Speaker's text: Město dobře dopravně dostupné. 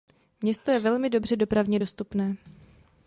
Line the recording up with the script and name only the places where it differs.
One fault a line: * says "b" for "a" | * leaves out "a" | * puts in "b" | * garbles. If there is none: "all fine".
* puts in "je velmi"